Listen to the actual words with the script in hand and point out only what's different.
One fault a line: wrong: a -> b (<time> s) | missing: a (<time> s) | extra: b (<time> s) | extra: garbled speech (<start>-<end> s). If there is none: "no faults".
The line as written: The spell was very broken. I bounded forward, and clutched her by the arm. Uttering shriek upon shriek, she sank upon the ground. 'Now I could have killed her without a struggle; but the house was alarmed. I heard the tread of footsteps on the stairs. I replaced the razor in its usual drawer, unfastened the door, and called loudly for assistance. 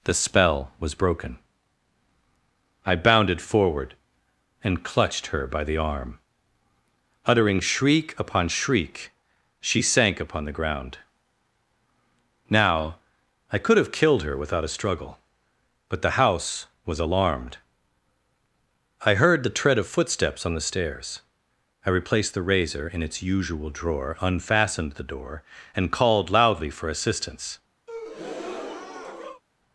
missing: very (0.9 s)